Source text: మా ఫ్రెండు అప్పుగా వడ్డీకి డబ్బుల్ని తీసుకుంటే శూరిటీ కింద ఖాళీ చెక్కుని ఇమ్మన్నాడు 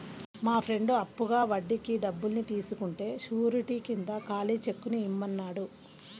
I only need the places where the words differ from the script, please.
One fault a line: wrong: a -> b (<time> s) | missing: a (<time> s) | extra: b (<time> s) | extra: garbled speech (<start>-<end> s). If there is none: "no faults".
no faults